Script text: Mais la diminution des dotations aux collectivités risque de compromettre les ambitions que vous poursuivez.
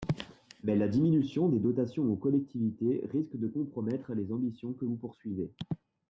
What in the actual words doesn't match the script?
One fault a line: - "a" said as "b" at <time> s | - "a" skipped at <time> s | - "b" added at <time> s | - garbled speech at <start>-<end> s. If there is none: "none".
none